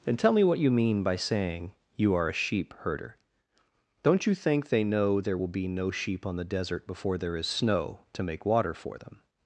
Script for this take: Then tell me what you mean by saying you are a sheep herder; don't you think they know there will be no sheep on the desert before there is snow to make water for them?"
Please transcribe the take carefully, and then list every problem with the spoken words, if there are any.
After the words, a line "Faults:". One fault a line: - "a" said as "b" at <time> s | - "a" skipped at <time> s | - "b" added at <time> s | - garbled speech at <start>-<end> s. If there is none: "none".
Then tell me what you mean by saying you are a sheep herder; don't you think they know there will be no sheep on the desert before there is snow to make water for them?"
Faults:
none